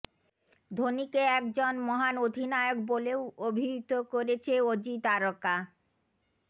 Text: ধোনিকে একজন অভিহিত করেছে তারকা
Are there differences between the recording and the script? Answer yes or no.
yes